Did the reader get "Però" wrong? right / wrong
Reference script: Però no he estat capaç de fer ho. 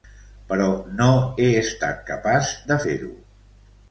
right